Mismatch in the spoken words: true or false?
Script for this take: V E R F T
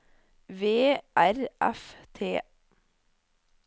true